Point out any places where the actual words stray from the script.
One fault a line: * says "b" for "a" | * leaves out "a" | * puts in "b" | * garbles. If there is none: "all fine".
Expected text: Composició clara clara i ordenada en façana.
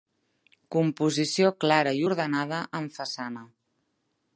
* leaves out "clara"